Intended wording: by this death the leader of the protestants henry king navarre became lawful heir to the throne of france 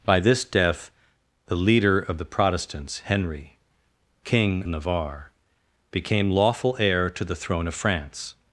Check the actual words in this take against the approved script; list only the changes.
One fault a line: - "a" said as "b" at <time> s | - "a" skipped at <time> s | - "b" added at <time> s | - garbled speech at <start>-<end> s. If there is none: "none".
none